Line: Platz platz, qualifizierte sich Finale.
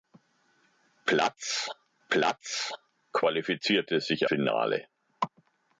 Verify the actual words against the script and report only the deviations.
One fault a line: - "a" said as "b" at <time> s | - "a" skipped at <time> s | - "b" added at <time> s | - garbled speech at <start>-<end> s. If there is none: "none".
none